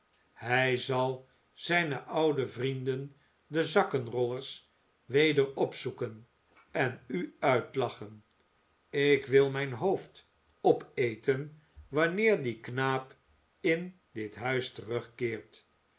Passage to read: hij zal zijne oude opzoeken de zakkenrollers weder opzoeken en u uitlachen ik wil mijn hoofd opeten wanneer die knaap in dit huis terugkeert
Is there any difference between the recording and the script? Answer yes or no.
yes